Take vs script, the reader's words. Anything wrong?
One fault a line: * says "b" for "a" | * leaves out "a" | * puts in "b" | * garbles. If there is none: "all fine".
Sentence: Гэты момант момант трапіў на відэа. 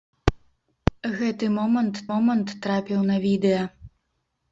all fine